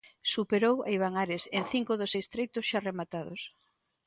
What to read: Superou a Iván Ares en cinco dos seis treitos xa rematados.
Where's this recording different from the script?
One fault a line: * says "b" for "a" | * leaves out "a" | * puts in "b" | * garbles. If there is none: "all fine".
all fine